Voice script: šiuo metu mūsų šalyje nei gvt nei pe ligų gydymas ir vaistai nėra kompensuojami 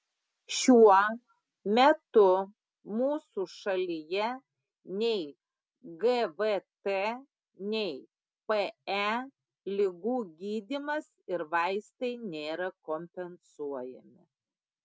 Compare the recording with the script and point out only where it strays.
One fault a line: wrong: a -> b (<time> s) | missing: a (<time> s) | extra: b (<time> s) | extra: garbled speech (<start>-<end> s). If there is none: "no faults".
no faults